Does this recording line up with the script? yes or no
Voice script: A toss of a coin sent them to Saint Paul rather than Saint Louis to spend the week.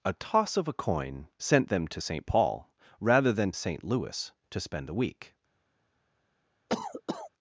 yes